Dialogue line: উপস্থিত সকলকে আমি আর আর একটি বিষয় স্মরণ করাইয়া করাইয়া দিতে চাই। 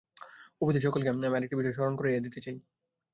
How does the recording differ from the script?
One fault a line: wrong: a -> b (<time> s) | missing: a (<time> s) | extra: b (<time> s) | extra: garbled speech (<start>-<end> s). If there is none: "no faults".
missing: আর (1.4 s)
missing: করাইয়া (2.2 s)